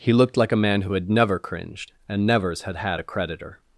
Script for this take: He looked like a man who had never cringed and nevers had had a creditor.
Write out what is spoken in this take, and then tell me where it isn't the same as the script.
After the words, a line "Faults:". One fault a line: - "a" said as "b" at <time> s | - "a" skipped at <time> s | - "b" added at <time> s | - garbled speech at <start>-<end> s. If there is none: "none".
He looked like a man who had never cringed and nevers had had a creditor.
Faults:
none